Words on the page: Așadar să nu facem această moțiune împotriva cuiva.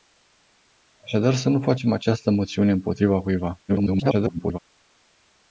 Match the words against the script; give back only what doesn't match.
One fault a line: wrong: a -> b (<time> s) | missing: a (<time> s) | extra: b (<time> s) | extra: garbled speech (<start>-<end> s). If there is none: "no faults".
extra: garbled speech (3.7-4.6 s)